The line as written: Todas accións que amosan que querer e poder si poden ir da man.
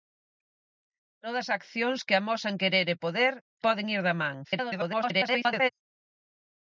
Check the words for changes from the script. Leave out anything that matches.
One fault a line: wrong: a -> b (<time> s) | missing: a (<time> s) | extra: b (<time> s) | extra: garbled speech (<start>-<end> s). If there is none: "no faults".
missing: que (2.5 s)
missing: si (3.3 s)
extra: garbled speech (4.4-5.7 s)